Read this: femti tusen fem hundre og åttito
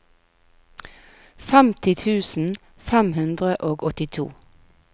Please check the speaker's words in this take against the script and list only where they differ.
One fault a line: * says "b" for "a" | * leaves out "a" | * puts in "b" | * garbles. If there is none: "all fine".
all fine